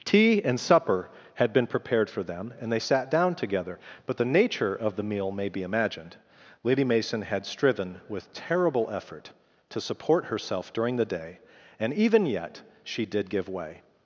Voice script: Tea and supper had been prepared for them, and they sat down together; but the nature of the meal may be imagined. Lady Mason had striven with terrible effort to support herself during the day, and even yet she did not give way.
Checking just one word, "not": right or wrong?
wrong